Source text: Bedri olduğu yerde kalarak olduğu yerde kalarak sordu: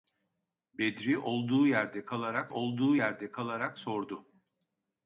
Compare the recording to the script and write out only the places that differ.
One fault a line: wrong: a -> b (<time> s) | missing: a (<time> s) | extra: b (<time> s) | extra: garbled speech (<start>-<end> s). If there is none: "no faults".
no faults